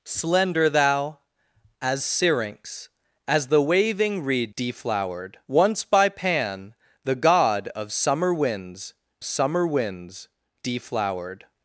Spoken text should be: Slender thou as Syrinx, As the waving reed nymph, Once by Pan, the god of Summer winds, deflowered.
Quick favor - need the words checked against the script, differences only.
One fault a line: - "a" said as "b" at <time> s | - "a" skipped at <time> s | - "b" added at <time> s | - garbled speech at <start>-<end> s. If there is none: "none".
- "nymph" said as "deflowered" at 4.6 s
- "Summer winds" added at 9.2 s